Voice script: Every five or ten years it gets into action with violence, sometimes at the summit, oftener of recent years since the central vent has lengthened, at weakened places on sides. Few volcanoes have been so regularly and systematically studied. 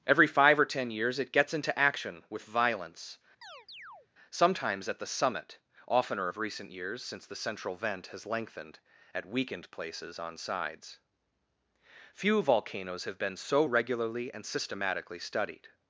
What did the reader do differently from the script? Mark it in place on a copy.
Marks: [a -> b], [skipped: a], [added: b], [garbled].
Every five or ten years it gets into action with violence, sometimes at the summit, oftener of recent years since the central vent has lengthened, at weakened places on sides. Few volcanoes have been so regularly and systematically studied.